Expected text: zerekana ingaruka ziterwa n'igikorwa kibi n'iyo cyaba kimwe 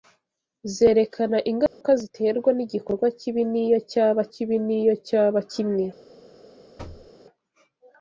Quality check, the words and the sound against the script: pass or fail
fail